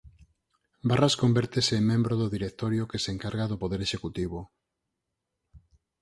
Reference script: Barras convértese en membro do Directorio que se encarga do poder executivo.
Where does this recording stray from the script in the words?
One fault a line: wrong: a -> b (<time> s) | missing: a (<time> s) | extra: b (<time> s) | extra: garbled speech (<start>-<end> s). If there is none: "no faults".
no faults